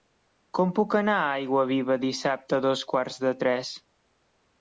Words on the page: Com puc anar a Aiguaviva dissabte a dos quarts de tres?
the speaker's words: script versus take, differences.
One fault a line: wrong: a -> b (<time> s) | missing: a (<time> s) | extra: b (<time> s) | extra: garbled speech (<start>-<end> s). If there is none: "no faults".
no faults